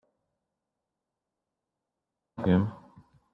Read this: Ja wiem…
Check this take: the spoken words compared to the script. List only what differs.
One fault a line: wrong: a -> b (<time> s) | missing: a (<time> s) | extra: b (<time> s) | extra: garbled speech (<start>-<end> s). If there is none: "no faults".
no faults